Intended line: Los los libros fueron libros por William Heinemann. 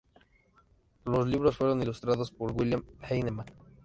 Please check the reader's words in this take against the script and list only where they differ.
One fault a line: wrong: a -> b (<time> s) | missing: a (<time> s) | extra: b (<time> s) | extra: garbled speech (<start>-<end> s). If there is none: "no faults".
missing: los (1.3 s)
wrong: libros -> ilustrados (1.8 s)